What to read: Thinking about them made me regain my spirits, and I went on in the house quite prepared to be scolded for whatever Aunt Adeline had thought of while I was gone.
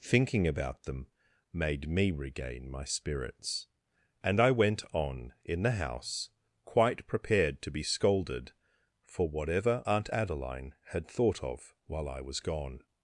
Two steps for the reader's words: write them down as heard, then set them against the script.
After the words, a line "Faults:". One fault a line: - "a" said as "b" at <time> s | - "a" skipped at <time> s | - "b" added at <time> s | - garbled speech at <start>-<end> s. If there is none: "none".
Thinking about them made me regain my spirits, and I went on in the house quite prepared to be scolded for whatever Aunt Adeline had thought of while I was gone.
Faults:
none